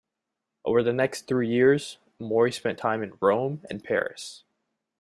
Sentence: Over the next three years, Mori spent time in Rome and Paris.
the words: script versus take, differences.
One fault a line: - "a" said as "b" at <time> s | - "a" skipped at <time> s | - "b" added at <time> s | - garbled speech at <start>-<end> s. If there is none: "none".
none